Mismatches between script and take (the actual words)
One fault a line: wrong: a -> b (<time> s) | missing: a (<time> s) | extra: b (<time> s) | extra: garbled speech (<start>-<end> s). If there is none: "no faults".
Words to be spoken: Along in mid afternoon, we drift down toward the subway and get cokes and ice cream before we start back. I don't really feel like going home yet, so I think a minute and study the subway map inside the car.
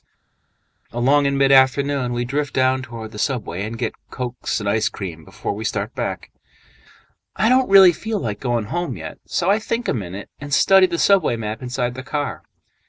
no faults